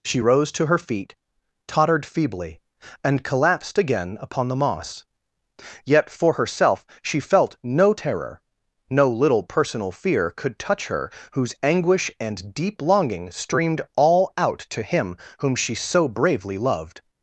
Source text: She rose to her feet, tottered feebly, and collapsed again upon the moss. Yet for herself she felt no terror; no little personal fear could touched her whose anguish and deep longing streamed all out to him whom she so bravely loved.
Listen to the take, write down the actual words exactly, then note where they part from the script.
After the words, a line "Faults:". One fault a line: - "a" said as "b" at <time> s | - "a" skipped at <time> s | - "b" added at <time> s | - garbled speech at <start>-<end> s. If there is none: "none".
She rose to her feet, tottered feebly, and collapsed again upon the moss. Yet for herself she felt no terror; no little personal fear could touch her whose anguish and deep longing streamed all out to him whom she so bravely loved.
Faults:
- "touched" said as "touch" at 10.6 s